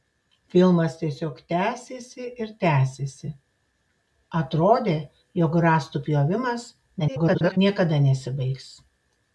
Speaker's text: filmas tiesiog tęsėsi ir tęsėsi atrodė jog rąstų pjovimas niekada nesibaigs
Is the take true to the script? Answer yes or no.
no